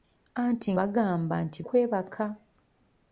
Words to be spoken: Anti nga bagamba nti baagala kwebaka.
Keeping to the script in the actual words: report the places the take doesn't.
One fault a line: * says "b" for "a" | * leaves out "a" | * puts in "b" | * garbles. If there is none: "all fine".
* leaves out "nga"
* leaves out "baagala"